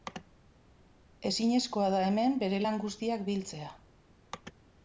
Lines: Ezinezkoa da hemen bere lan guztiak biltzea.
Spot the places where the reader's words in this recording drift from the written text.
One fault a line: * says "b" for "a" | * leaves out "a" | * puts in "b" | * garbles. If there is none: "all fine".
all fine